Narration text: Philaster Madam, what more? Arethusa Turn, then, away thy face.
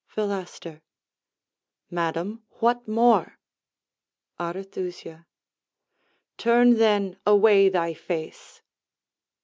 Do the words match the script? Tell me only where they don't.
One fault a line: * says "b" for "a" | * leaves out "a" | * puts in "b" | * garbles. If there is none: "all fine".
all fine